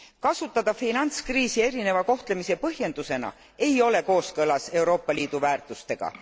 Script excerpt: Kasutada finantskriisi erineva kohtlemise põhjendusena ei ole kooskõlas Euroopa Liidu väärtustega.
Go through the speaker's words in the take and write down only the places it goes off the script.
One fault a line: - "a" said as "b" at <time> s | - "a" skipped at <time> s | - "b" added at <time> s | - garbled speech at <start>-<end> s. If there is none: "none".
none